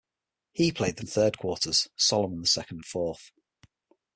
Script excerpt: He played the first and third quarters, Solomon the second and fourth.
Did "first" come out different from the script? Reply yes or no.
yes